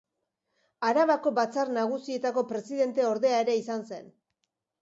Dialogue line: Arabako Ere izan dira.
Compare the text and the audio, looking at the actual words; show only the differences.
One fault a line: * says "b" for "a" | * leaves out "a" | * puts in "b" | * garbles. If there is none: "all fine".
* puts in "Batzar Nagusietako presidenteordea"
* says "zen" for "dira"